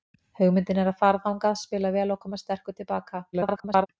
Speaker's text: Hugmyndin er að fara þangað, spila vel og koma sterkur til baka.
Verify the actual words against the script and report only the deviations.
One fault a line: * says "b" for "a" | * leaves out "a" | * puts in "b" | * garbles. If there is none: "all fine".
* garbles